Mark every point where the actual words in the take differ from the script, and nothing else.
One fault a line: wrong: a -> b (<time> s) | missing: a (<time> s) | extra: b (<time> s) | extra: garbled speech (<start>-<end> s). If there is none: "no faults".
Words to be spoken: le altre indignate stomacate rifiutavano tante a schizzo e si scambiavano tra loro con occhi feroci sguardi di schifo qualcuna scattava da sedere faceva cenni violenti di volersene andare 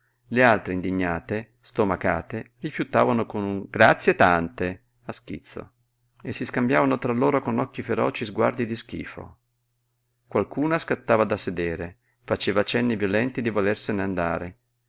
extra: con un grazie (3.3 s)